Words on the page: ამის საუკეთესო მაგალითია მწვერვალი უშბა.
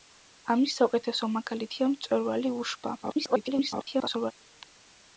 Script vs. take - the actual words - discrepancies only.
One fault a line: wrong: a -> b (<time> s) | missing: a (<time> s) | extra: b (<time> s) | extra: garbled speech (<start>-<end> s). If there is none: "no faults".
extra: garbled speech (3.0-4.3 s)